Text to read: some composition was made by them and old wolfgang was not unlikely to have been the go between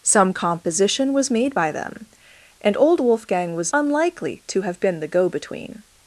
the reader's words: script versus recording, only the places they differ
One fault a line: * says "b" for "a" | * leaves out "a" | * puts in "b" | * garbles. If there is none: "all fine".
* leaves out "not"